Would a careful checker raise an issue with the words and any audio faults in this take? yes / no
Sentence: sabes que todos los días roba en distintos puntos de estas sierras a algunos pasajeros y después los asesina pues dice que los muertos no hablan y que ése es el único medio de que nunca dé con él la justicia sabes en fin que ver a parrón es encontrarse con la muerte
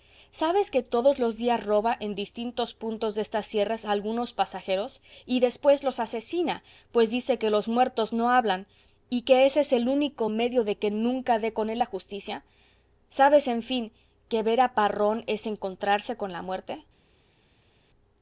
no